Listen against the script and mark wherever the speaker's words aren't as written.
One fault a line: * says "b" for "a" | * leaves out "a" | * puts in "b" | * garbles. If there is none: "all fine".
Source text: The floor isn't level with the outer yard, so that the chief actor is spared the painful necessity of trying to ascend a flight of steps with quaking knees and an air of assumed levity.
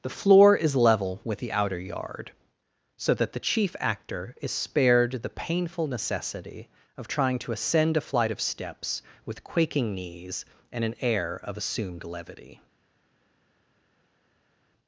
* says "is" for "isn't"